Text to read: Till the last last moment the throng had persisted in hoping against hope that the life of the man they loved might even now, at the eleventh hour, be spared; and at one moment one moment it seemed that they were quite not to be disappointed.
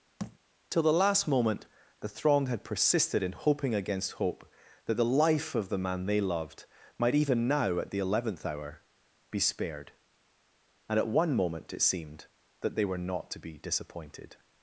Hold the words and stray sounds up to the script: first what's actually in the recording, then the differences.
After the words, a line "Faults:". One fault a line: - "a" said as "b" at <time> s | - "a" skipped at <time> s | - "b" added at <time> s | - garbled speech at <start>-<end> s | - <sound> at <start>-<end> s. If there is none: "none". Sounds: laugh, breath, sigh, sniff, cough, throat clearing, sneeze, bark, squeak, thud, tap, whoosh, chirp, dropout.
Till the last moment the throng had persisted in hoping against hope that the life of the man they loved might even now, at the eleventh hour, be spared; and at one moment it seemed that they were not to be disappointed.
Faults:
- thud at 0.2-0.4 s
- "last" skipped at 1.3 s
- "one moment" skipped at 11.7 s
- "quite" skipped at 13.0 s